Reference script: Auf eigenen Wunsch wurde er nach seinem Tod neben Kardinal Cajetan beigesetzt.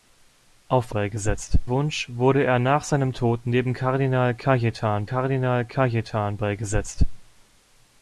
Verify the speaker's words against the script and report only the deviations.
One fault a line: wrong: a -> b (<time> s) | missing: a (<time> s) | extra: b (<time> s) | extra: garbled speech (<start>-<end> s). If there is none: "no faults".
wrong: eigenen -> beigesetzt (0.9 s)
extra: Kardinal Cajetan (5.0 s)